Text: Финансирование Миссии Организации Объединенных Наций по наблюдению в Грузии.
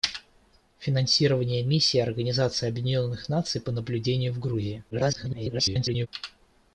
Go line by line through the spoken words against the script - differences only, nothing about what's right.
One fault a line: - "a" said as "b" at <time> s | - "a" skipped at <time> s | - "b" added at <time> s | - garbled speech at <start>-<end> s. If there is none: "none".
- garbled speech at 4.9-6.1 s